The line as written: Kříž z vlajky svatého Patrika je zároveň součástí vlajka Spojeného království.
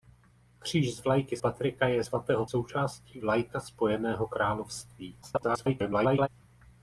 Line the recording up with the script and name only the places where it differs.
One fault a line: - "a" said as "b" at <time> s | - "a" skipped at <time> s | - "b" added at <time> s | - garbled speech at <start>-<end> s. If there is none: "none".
- "svatého" skipped at 1.4 s
- "zároveň" said as "svatého" at 2.0 s
- garbled speech at 5.2-6.3 s